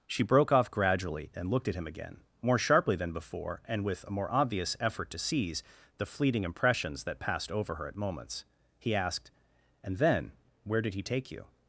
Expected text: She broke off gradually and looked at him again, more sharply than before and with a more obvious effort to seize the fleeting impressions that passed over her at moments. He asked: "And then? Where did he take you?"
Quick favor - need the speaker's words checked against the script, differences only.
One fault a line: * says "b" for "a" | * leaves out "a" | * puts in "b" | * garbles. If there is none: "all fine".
all fine